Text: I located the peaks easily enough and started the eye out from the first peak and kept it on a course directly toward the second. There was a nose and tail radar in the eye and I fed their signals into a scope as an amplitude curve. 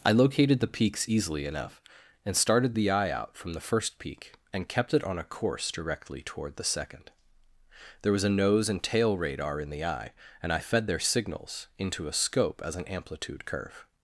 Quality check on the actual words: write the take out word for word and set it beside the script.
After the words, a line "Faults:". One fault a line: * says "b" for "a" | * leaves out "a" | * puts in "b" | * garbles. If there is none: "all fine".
I located the peaks easily enough and started the eye out from the first peak and kept it on a course directly toward the second. There was a nose and tail radar in the eye and I fed their signals into a scope as an amplitude curve.
Faults:
all fine